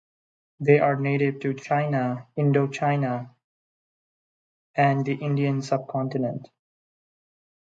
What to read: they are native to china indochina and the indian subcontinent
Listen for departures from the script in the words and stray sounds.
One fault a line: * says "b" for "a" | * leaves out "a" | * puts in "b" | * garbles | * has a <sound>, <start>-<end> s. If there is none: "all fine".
all fine